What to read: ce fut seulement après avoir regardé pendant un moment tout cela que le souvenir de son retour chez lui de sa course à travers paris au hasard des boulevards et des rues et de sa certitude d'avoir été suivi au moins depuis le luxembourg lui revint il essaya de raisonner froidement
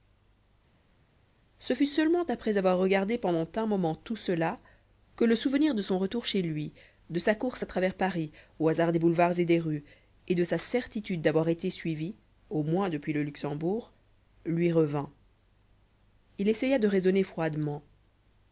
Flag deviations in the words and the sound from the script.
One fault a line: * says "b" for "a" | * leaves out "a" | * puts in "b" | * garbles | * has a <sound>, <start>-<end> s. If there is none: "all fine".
all fine